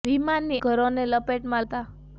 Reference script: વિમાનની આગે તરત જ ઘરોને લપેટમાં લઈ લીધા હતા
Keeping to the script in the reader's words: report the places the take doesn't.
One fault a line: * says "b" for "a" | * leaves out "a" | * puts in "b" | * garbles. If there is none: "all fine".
* leaves out "આગે તરત જ"
* leaves out "લઈ લીધા"